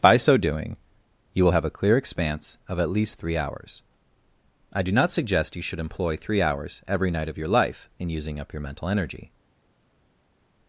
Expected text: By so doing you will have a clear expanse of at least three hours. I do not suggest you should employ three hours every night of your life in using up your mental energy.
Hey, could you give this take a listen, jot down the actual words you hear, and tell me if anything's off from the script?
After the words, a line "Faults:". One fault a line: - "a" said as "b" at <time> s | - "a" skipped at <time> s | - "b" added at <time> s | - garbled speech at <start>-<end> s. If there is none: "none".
By so doing you will have a clear expanse of at least three hours. I do not suggest you should employ three hours every night of your life in using up your mental energy.
Faults:
none